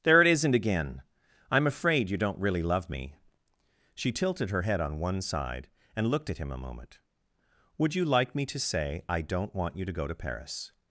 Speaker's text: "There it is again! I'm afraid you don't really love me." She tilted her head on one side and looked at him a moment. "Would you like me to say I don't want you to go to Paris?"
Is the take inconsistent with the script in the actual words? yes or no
yes